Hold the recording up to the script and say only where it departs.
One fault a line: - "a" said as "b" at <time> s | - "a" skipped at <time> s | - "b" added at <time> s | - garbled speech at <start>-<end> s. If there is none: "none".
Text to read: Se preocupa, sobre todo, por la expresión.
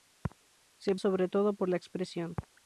- "preocupa" skipped at 0.9 s